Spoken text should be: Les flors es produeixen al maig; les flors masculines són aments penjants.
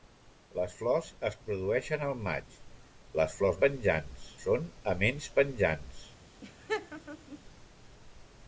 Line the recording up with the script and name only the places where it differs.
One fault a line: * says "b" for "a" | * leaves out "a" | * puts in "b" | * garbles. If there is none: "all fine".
* says "penjants" for "masculines"